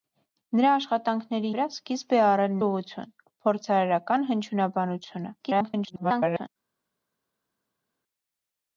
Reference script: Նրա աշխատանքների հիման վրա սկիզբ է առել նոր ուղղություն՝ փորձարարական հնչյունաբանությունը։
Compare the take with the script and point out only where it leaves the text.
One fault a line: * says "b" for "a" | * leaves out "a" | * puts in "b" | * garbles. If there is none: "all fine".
* leaves out "հիման"
* leaves out "նոր"
* garbles